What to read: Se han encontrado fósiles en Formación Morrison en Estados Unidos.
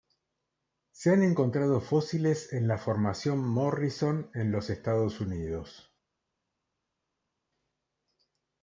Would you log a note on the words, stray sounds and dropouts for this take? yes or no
yes